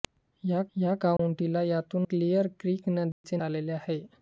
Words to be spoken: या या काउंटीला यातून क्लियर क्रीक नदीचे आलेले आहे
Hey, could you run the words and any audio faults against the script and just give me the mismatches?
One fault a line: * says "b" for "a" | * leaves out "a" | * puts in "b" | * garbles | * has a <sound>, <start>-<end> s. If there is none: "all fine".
* has a dropout, 1.2-1.2 s
* has a dropout, 3.1-3.2 s